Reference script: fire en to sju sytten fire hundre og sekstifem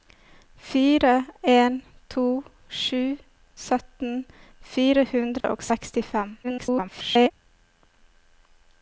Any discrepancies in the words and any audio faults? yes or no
yes